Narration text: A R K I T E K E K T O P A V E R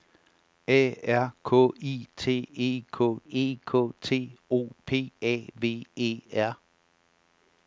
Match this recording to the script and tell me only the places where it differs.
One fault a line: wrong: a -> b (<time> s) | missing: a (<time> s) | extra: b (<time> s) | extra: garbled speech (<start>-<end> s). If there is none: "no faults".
no faults